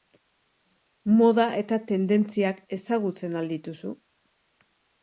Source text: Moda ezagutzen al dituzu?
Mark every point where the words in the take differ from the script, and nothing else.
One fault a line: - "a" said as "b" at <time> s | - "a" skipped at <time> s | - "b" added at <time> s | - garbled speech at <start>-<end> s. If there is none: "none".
- "eta tendentziak" added at 1.6 s